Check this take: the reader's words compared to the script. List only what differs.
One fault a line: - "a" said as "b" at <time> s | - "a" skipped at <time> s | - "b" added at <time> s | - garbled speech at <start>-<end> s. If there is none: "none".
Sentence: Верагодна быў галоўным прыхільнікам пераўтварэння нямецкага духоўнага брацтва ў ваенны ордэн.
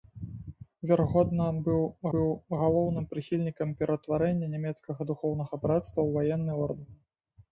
- "быў" added at 2.1 s